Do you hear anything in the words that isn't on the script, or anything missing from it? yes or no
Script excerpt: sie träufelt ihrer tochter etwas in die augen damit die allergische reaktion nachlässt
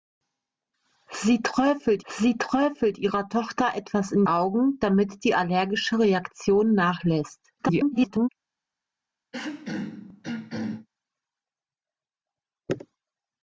yes